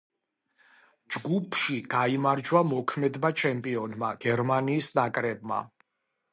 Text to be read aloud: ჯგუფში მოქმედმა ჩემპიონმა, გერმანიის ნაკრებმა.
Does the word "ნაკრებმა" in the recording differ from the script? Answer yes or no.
no